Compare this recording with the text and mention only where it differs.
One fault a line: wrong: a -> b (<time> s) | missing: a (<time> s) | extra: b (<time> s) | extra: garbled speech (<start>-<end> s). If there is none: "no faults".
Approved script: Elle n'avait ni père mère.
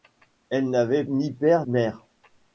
no faults